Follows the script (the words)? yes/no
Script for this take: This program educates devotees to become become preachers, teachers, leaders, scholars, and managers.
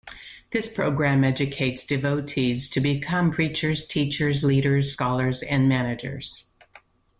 no